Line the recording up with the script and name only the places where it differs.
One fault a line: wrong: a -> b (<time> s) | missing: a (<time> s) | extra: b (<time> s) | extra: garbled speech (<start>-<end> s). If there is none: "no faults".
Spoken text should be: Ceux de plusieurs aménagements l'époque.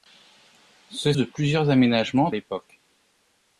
no faults